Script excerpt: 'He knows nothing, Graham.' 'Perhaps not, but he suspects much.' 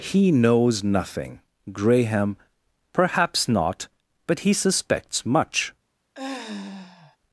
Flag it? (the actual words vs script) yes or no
no